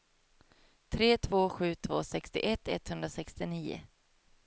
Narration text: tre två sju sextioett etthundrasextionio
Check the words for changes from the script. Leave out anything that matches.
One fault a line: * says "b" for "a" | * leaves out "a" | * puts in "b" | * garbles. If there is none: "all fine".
* puts in "två"